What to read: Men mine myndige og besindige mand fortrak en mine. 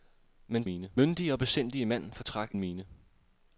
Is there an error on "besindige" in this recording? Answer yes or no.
no